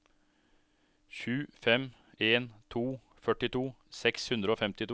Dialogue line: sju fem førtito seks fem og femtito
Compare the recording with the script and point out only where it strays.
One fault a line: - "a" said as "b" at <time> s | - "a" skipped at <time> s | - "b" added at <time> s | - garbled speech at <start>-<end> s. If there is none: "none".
- "en to" added at 2.2 s
- "fem" said as "hundre" at 4.3 s